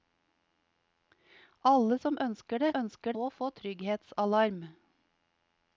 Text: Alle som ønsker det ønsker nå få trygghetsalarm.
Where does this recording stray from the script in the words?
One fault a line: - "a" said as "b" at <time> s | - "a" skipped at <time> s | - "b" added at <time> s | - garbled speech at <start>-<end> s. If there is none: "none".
none